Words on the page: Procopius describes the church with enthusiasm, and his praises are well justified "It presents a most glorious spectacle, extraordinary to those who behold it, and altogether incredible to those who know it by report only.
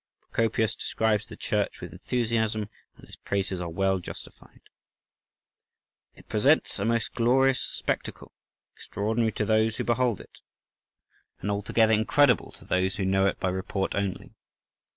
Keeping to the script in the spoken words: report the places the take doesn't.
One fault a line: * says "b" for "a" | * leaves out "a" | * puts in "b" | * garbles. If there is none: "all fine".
all fine